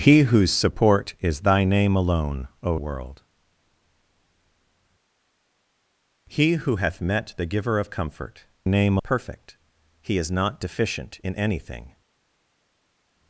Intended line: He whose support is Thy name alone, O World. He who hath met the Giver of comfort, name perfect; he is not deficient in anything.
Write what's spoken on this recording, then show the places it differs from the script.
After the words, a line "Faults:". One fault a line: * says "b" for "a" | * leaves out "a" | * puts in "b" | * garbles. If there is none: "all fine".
He whose support is Thy name alone, O World. He who hath met the Giver of comfort, name perfect; he is not deficient in anything.
Faults:
all fine